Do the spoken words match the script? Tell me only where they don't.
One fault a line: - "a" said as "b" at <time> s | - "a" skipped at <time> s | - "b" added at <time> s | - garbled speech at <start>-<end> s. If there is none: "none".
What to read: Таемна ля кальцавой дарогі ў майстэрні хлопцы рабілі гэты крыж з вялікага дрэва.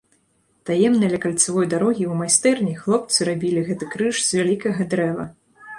none